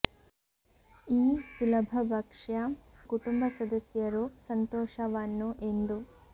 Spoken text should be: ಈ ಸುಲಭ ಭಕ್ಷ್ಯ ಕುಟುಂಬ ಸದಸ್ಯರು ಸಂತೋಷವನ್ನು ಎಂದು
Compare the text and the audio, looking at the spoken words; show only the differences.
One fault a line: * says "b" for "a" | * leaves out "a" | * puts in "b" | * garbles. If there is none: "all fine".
all fine